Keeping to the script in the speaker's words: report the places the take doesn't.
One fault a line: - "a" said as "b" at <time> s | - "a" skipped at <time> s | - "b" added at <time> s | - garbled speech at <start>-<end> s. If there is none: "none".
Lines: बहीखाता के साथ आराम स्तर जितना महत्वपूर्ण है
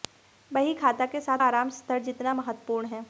none